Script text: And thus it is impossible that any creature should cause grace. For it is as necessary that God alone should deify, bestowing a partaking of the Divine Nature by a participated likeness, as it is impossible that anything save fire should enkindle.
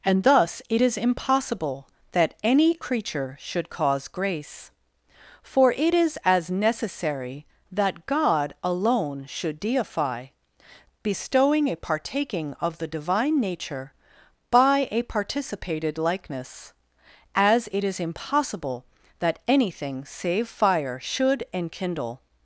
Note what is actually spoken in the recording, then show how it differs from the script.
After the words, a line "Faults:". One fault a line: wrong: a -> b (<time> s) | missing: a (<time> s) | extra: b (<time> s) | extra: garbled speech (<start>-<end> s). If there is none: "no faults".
And thus it is impossible that any creature should cause grace. For it is as necessary that God alone should deify, bestowing a partaking of the Divine Nature by a participated likeness, as it is impossible that anything save fire should enkindle.
Faults:
no faults